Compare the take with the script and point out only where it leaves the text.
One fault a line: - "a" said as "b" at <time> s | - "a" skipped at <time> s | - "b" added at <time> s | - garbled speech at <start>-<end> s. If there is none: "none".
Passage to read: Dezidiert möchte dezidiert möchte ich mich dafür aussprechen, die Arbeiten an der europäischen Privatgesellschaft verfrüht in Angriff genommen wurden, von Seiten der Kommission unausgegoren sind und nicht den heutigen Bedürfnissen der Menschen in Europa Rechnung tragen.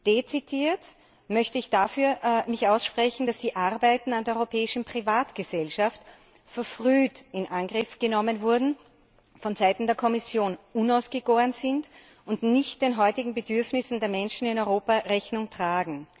- "dezidiert möchte" skipped at 1.6 s
- "dass" added at 3.2 s